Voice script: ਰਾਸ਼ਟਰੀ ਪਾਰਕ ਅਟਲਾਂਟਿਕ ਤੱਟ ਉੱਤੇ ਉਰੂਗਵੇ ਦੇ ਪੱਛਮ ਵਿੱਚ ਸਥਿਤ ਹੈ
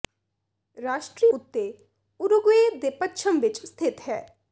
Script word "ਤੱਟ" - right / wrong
wrong